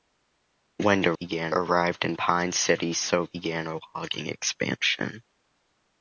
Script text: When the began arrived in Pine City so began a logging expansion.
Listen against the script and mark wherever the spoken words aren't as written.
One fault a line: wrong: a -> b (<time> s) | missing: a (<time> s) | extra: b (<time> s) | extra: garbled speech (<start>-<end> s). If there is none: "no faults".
no faults